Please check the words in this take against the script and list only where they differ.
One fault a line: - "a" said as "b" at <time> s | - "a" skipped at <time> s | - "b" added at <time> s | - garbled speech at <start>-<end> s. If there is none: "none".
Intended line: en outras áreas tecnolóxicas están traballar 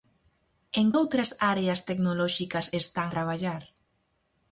none